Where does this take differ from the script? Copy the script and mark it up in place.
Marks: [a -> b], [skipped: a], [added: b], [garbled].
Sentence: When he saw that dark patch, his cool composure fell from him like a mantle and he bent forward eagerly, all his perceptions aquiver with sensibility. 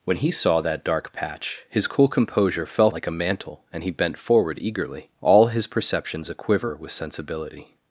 When he saw that dark patch, his cool composure fell [skipped: from him] like a mantle and he bent forward eagerly, all his perceptions aquiver with sensibility.